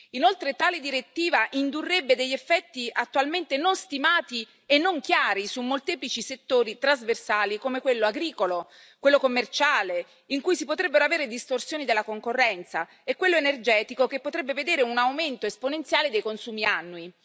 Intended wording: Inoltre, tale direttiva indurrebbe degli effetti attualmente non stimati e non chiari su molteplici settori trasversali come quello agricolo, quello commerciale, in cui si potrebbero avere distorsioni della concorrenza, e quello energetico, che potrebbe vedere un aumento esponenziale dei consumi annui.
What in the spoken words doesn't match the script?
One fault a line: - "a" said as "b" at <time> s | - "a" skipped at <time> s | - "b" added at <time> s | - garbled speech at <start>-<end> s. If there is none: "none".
none